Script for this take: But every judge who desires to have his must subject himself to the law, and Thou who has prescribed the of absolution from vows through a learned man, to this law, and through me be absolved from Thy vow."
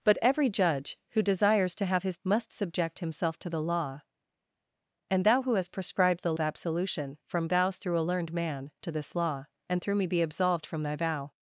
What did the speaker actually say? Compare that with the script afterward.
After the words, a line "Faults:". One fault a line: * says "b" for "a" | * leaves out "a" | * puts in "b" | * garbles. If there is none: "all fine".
But every judge who desires to have his must subject himself to the law, and Thou who has prescribed the of absolution from vows through a learned man, to this law, and through me be absolved from Thy vow."
Faults:
all fine